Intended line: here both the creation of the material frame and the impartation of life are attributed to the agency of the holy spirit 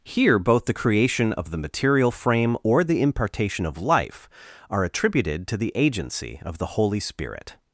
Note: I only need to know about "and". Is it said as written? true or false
false